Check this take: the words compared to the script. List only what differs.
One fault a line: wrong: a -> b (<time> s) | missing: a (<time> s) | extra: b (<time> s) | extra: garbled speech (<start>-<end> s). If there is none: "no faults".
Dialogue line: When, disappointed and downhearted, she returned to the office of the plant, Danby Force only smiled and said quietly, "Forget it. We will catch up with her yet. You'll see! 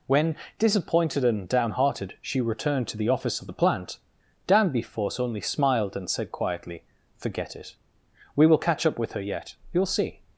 no faults